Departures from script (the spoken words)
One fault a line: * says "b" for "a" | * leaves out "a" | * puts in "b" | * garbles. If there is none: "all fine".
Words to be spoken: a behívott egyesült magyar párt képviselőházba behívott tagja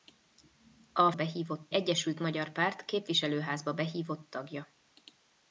all fine